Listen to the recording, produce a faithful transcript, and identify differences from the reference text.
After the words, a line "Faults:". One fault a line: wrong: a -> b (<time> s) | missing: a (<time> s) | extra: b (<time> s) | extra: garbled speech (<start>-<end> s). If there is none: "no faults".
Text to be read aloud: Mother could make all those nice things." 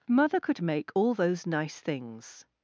Mother could make all those nice things."
Faults:
no faults